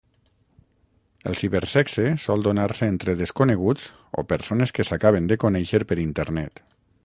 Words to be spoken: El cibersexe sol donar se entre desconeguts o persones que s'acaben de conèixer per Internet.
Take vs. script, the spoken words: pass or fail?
pass